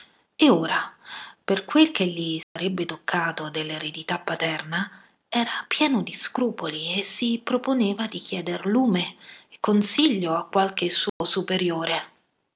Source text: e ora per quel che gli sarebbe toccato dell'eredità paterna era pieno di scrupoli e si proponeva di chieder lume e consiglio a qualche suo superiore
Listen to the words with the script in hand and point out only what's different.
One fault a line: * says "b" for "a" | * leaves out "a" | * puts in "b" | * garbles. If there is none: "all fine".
all fine